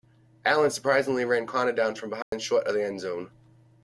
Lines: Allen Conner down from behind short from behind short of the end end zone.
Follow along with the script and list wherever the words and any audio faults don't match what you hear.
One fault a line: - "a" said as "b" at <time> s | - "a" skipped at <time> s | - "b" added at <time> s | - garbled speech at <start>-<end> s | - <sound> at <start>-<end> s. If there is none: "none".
- "surprisingly ran" added at 0.7 s
- dropout at 2.2-2.3 s
- "from behind short" skipped at 2.7 s
- "end" skipped at 3.0 s